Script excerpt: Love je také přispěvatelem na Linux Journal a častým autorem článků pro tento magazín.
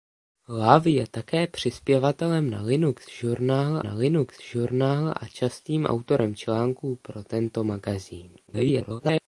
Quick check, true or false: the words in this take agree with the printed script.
false